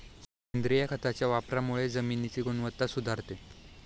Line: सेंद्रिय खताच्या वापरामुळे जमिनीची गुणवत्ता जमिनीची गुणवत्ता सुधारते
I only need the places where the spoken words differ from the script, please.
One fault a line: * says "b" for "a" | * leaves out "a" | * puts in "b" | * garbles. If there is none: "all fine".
* leaves out "जमिनीची गुणवत्ता"